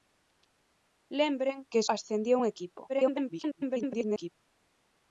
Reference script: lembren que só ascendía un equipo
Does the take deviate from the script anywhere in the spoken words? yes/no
yes